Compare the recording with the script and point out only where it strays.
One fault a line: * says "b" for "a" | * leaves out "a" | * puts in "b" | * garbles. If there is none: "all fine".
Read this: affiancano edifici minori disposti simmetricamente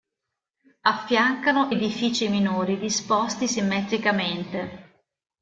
all fine